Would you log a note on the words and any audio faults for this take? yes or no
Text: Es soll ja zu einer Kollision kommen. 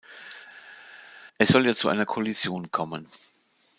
no